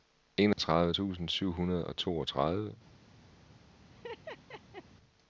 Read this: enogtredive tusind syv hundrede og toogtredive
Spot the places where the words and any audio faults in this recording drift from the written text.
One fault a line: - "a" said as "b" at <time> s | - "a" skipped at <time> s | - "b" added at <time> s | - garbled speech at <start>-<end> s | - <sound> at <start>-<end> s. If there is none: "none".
- dropout at 0.5-0.6 s
- laugh at 3.9-4.8 s